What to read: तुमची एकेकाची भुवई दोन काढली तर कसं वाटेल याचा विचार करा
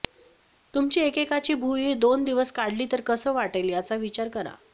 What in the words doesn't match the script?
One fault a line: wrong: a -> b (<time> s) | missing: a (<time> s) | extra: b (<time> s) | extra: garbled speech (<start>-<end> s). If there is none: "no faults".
extra: दिवस (2.2 s)